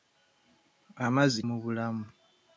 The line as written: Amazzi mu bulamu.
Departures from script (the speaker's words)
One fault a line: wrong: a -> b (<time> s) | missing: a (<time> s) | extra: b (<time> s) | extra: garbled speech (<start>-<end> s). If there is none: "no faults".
no faults